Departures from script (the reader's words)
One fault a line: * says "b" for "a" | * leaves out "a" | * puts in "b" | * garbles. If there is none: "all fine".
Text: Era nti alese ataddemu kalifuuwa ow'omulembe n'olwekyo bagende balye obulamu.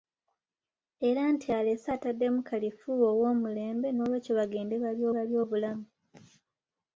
* puts in "balye"